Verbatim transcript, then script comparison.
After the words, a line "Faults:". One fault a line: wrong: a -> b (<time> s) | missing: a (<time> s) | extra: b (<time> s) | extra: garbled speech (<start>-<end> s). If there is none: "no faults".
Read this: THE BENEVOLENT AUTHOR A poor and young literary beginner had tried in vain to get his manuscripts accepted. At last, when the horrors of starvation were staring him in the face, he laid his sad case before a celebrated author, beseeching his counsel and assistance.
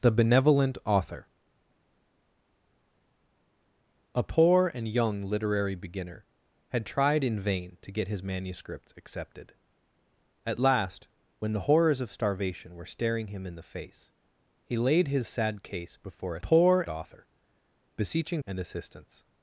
THE BENEVOLENT AUTHOR A poor and young literary beginner had tried in vain to get his manuscripts accepted. At last, when the horrors of starvation were staring him in the face, he laid his sad case before a poor author, beseeching and assistance.
Faults:
wrong: celebrated -> poor (16.4 s)
missing: his counsel (18.4 s)